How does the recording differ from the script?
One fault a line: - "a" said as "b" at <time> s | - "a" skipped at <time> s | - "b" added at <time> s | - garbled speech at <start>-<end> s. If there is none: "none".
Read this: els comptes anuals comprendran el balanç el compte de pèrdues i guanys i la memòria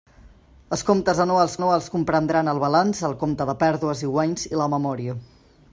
- "anuals" added at 1.6 s